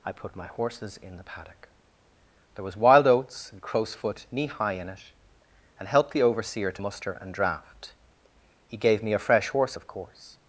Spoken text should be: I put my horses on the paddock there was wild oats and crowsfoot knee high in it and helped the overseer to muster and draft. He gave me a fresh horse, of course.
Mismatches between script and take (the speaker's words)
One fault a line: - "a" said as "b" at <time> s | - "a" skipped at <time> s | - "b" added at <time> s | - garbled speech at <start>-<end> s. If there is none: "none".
- "on" said as "in" at 1.0 s